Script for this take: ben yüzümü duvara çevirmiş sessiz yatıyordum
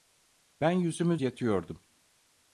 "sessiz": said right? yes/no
no